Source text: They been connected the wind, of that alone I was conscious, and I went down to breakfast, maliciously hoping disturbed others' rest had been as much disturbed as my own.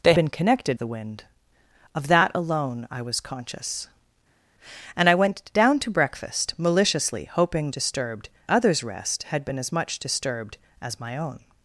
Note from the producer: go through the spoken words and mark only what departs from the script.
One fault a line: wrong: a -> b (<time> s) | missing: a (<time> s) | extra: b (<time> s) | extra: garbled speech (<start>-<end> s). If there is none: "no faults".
no faults